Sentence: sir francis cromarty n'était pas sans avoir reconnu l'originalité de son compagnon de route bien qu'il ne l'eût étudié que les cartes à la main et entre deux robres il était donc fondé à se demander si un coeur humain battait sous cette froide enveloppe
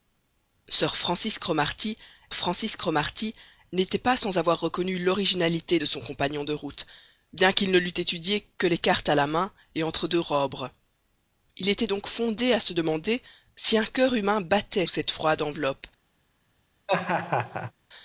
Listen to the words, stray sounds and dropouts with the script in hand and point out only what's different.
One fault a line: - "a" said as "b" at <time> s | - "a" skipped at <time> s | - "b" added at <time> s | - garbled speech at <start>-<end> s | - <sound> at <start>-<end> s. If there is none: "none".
- "francis cromarty" added at 2.3 s
- "sous" skipped at 14.9 s
- laugh at 16.9-17.7 s